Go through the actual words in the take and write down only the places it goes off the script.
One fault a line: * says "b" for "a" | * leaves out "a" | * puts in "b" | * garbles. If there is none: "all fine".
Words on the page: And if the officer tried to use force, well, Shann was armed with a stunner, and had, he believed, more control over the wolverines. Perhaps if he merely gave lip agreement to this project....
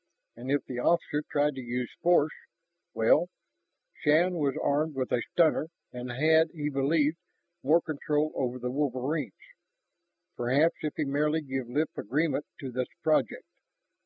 all fine